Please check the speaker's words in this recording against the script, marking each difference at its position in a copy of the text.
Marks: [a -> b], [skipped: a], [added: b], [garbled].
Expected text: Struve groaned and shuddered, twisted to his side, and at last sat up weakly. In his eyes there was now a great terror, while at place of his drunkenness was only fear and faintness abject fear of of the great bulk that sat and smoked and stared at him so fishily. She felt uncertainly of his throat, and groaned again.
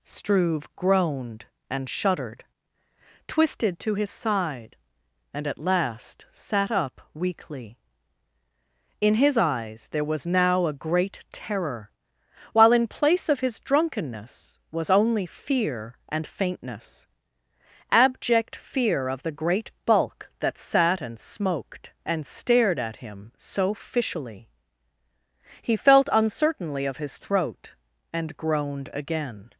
Struve groaned and shuddered, twisted to his side, and at last sat up weakly. In his eyes there was now a great terror, while [at -> in] place of his drunkenness was only fear and faintness abject fear of [skipped: of] the great bulk that sat and smoked and stared at him so fishily. [She -> He] felt uncertainly of his throat, and groaned again.